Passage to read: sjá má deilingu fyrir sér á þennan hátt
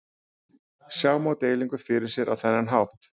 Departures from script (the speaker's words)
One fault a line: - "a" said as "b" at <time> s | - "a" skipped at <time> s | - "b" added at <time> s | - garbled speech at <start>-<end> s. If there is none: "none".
none